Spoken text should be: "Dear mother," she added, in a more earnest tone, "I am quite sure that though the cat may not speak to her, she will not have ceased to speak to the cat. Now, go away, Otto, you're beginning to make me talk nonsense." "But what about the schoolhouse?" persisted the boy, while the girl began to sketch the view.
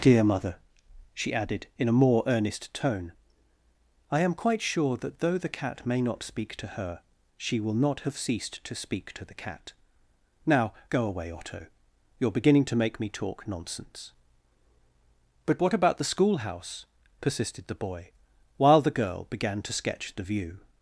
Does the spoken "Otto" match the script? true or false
true